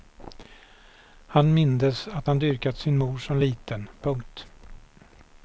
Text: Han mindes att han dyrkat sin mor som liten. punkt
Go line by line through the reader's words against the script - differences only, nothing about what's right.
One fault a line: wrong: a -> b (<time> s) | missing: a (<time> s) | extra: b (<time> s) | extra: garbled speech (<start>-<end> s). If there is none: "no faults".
no faults